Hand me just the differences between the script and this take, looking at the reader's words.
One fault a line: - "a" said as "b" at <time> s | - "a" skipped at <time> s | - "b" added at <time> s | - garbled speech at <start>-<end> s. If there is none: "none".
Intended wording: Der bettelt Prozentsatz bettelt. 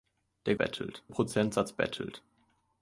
none